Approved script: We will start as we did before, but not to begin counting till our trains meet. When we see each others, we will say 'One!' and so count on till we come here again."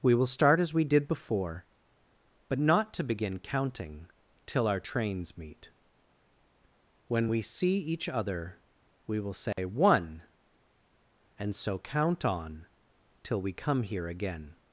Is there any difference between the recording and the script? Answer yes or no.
yes